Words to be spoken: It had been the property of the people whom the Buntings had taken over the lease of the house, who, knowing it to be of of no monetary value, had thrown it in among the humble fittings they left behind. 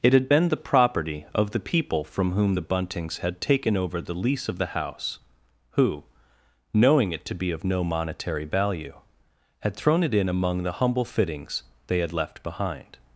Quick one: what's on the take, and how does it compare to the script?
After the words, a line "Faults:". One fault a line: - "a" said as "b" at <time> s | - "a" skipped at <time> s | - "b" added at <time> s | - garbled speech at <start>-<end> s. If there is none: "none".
It had been the property of the people from whom the Buntings had taken over the lease of the house, who, knowing it to be of no monetary value, had thrown it in among the humble fittings they had left behind.
Faults:
- "from" added at 2.0 s
- "of" skipped at 7.6 s
- "had" added at 12.0 s